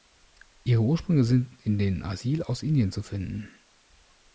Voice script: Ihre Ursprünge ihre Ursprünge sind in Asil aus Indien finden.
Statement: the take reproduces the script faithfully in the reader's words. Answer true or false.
false